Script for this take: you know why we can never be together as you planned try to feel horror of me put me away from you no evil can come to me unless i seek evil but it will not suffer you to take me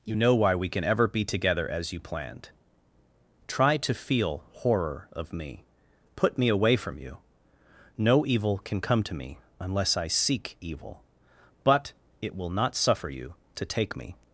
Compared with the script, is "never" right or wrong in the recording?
wrong